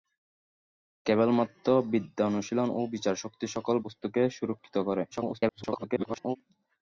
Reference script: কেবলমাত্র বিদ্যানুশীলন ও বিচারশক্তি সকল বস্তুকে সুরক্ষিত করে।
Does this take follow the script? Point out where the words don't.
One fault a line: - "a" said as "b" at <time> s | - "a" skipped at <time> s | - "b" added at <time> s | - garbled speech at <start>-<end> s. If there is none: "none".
- garbled speech at 5.1-6.4 s